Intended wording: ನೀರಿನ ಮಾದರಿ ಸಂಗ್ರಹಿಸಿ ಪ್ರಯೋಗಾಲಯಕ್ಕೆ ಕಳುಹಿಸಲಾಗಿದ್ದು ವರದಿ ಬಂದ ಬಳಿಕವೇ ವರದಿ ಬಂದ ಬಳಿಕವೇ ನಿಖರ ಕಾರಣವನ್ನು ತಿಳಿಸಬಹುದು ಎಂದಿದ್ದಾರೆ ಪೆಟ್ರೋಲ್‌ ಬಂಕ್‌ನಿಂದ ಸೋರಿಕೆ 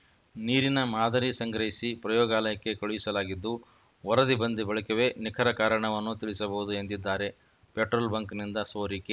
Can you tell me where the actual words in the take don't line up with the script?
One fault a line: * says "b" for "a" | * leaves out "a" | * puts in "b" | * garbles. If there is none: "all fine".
* leaves out "ವರದಿ ಬಂದ ಬಳಿಕವೇ"